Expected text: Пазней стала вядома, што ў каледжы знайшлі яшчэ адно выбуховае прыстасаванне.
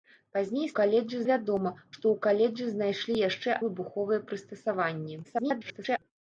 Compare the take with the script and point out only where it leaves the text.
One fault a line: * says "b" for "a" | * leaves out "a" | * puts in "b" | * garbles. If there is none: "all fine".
* says "каледжы" for "стала"
* leaves out "адно"
* garbles